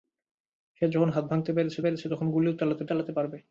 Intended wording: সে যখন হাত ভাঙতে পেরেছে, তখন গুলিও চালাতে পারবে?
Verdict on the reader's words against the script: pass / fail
fail